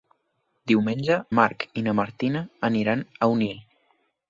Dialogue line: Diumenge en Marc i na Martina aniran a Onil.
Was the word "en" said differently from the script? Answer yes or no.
yes